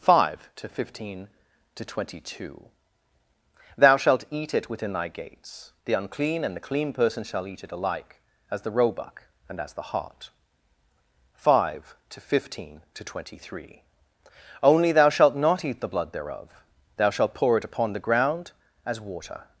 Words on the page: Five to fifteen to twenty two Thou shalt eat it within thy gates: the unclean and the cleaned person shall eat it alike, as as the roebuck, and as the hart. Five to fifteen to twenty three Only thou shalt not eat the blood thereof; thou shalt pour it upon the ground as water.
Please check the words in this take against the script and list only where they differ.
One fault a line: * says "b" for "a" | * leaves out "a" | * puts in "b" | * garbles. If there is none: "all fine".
* says "clean" for "cleaned"
* leaves out "as"